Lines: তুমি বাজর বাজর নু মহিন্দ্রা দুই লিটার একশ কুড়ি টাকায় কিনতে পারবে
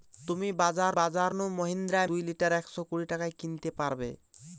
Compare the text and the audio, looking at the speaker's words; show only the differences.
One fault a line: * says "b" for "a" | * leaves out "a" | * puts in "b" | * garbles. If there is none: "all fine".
all fine